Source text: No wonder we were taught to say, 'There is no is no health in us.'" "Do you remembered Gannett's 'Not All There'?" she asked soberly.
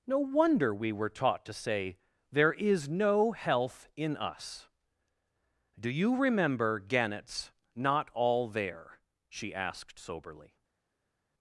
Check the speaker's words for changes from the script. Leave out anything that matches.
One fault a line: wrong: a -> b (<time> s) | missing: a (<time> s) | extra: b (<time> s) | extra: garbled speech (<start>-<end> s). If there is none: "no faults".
missing: is no (3.3 s)
wrong: remembered -> remember (6.2 s)